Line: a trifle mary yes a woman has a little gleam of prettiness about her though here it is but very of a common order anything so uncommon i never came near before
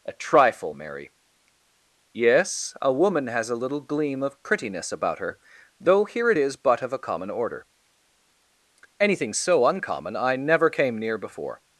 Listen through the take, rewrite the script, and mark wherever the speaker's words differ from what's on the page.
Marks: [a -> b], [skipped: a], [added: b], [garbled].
a trifle mary yes a woman has a little gleam of prettiness about her though here it is but [skipped: very] of a common order anything so uncommon i never came near before